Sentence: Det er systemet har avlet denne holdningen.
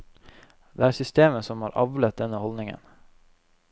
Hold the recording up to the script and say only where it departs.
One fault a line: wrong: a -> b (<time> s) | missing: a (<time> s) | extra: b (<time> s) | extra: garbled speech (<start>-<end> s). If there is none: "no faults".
extra: som (1.5 s)